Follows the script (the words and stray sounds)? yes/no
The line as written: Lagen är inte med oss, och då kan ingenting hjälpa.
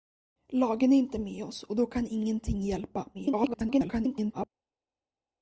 no